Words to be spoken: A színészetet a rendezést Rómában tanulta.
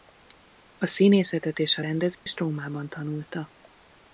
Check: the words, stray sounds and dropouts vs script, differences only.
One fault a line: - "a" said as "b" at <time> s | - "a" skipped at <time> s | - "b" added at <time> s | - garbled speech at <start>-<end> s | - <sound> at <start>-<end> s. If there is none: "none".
- "és" added at 1.6 s
- dropout at 2.1-2.3 s